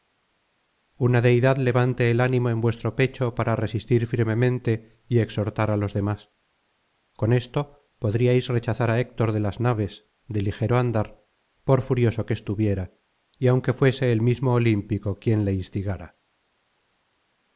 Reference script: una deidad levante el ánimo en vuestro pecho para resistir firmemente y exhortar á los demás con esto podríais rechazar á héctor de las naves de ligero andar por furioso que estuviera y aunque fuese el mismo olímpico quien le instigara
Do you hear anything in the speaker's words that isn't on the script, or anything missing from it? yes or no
no